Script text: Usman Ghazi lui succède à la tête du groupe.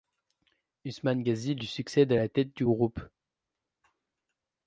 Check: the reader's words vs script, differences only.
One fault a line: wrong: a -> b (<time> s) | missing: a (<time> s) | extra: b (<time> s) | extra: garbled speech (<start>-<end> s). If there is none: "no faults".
no faults